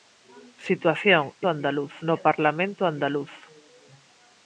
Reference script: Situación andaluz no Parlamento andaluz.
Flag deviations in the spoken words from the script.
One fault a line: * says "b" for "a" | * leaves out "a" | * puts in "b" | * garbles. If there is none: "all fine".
all fine